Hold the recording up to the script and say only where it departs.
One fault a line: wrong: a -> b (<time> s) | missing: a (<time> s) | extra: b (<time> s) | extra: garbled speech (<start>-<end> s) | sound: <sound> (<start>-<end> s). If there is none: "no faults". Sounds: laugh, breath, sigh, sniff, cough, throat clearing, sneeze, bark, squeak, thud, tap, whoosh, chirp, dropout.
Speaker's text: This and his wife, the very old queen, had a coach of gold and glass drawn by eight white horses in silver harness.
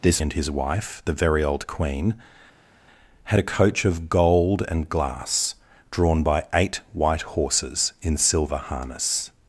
no faults